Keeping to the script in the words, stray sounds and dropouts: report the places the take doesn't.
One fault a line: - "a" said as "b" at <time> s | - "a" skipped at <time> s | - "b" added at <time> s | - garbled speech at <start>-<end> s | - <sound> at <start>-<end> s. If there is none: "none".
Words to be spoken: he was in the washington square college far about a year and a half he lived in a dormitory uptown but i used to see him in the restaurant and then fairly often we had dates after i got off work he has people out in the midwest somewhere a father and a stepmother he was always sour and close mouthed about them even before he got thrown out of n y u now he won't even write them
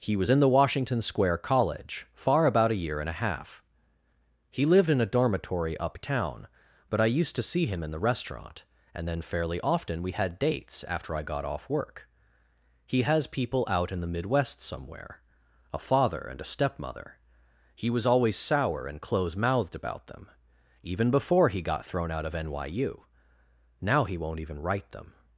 none